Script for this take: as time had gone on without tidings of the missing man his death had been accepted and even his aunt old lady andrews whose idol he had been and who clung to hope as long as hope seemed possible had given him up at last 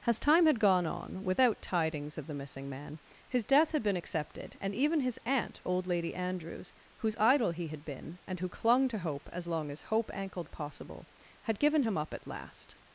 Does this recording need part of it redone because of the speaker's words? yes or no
yes